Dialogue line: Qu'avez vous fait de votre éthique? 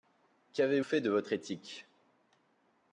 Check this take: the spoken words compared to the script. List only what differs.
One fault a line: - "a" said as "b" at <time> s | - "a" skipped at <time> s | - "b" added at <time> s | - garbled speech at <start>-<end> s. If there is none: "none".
- "vous" skipped at 0.8 s